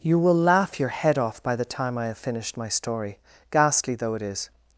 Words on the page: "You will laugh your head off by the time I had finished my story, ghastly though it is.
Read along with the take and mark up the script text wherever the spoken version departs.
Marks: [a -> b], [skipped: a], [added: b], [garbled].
"You will laugh your head off by the time I [had -> have] finished my story, ghastly though it is.